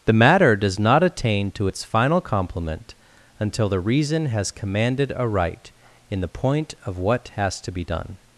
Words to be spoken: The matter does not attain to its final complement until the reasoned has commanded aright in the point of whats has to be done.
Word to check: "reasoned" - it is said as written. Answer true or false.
false